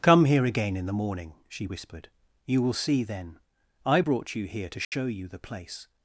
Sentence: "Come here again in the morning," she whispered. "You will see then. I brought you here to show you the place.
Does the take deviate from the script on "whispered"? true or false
false